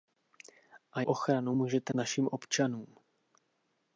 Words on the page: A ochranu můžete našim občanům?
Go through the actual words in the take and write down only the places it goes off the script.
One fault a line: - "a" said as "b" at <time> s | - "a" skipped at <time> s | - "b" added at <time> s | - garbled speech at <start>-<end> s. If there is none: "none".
none